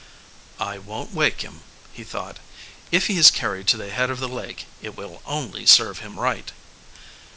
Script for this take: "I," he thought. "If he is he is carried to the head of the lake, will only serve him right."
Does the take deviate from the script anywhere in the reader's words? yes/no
yes